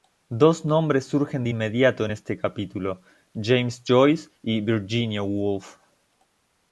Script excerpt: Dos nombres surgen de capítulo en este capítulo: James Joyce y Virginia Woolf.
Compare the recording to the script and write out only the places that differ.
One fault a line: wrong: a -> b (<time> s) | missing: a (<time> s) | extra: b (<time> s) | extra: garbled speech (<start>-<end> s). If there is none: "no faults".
wrong: capítulo -> inmediato (1.5 s)